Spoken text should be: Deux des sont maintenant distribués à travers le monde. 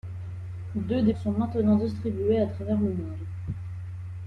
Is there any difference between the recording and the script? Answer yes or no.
no